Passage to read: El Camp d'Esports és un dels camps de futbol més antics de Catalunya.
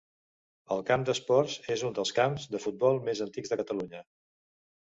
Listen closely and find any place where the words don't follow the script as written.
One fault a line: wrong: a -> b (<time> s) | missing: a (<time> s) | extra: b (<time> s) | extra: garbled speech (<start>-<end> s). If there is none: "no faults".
no faults